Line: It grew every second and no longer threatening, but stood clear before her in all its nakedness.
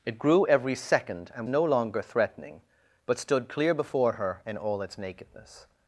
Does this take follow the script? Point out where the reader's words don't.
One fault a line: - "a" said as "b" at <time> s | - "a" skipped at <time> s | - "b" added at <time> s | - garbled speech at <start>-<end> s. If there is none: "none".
none